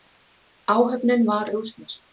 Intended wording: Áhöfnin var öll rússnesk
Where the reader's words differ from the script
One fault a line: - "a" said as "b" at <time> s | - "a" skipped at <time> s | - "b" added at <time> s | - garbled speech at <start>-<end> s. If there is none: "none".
- "öll" skipped at 1.5 s